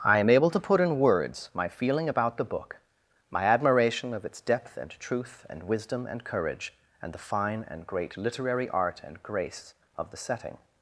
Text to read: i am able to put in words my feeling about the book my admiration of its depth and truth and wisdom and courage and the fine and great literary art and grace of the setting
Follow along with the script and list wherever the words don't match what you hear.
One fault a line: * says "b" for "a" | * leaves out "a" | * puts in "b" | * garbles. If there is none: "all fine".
all fine